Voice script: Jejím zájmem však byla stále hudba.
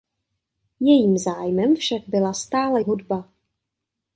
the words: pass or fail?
pass